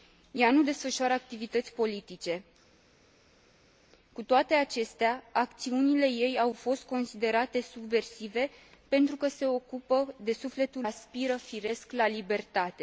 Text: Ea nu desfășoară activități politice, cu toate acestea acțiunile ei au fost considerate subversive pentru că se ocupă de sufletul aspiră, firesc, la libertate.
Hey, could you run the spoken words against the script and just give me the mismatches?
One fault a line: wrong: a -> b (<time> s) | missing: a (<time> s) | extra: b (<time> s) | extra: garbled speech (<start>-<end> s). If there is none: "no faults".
no faults